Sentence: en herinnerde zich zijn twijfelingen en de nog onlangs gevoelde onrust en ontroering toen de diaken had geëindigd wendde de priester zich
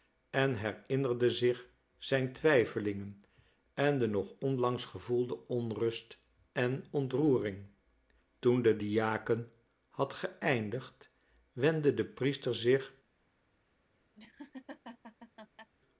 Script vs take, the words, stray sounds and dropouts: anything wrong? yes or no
yes